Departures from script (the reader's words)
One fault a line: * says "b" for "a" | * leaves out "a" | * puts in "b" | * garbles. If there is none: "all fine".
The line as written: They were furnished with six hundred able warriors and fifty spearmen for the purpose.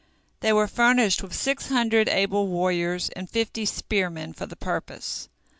all fine